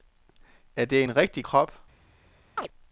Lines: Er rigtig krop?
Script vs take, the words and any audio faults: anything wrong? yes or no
yes